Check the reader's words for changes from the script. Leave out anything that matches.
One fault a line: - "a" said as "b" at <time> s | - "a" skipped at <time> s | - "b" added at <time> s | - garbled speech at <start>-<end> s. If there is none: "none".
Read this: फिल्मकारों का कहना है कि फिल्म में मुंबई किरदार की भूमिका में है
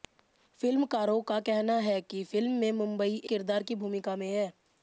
none